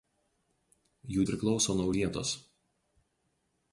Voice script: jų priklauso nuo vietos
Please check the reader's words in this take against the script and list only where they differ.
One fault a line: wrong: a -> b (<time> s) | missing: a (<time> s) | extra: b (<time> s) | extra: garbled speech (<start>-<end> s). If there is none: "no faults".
no faults